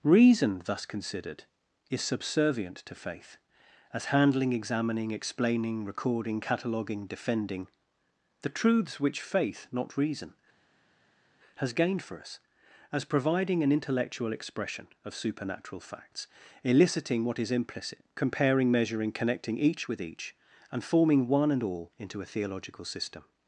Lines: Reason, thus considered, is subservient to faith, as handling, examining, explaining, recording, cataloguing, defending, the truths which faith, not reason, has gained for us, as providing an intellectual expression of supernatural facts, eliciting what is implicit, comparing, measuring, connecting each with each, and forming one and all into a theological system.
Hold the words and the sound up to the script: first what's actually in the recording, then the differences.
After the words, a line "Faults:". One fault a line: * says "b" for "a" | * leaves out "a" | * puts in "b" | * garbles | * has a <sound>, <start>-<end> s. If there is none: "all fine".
Reason, thus considered, is subservient to faith, as handling, examining, explaining, recording, cataloguing, defending, the truths which faith, not reason, has gained for us, as providing an intellectual expression of supernatural facts, eliciting what is implicit, comparing, measuring, connecting each with each, and forming one and all into a theological system.
Faults:
all fine